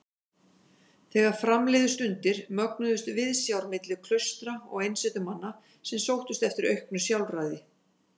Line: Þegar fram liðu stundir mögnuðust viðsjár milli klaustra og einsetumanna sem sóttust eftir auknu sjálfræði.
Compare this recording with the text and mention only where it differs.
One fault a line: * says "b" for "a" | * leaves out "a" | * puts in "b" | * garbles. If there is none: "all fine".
all fine